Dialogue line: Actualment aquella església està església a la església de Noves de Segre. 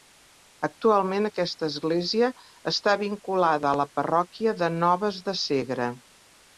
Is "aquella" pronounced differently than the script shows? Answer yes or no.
yes